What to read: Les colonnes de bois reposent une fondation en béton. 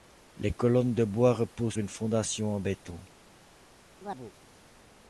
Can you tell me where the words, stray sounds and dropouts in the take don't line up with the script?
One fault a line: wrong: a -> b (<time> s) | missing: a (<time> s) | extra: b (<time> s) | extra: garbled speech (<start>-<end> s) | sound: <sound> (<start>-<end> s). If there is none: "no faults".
sound: chirp (4.0-4.3 s)